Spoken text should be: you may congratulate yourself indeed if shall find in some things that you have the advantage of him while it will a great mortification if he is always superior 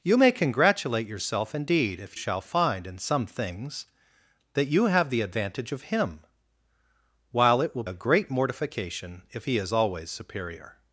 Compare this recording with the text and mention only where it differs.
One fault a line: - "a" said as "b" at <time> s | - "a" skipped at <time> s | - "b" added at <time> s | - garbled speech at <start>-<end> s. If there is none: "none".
none